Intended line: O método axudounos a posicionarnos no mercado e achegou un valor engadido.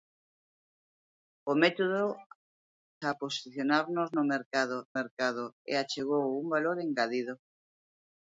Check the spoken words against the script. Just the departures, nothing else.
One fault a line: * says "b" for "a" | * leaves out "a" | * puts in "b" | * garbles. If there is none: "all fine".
* leaves out "axudounos"
* puts in "mercado"